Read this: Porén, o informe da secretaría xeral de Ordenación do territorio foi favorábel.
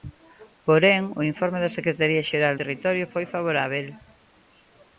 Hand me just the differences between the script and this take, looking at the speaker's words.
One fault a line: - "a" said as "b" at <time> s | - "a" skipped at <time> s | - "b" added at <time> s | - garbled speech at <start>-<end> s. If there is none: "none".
- "de Ordenación do" skipped at 2.5 s